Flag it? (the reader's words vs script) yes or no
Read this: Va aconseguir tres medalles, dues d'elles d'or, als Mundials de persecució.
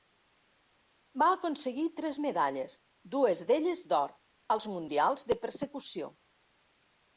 no